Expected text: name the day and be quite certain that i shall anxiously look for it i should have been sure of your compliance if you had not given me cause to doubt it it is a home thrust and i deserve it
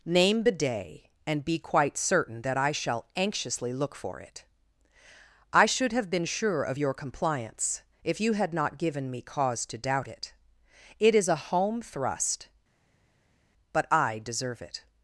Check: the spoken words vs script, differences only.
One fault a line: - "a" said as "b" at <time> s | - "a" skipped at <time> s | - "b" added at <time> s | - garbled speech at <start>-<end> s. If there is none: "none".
- "and" said as "but" at 13.7 s